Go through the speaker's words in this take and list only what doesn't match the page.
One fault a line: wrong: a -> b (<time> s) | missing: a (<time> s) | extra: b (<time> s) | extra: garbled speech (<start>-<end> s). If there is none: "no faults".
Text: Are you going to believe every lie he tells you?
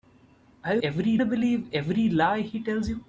wrong: going -> every (0.8 s)